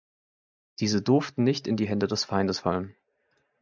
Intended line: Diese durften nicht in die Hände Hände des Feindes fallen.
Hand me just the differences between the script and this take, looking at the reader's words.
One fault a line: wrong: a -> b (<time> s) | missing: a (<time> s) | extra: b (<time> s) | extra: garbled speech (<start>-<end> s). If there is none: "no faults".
missing: Hände (2.1 s)